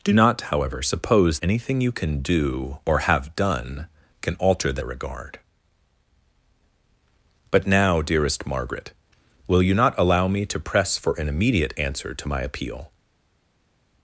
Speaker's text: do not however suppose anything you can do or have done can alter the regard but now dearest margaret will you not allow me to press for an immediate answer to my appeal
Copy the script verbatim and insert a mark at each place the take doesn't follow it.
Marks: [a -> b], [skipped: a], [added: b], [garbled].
do not however suppose anything you can do or have done can alter the regard but now dearest margaret will you not allow me to press for an immediate answer to my appeal